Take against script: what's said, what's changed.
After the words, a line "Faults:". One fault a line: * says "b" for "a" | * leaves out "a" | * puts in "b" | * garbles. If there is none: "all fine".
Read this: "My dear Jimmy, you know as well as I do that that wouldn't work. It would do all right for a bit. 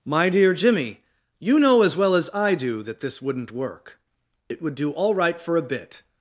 "My dear Jimmy, you know as well as I do that this wouldn't work. It would do all right for a bit.
Faults:
* says "this" for "that"